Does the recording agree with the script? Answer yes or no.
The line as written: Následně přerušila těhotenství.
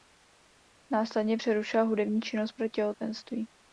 no